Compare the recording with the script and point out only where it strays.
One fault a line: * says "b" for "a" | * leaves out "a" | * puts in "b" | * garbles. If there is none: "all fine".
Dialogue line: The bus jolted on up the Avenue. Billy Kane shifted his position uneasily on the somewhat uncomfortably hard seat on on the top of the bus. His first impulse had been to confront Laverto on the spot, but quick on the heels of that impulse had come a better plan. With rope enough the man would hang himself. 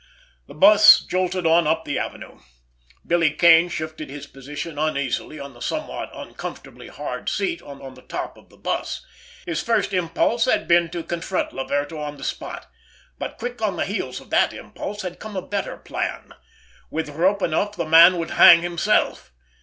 all fine